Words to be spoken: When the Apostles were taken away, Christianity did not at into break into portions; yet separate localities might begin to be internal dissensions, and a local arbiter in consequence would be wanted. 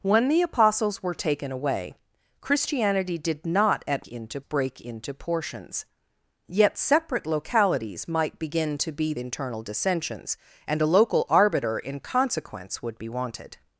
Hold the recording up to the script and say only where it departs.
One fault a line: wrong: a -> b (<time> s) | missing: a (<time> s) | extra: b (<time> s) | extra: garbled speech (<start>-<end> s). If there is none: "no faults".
no faults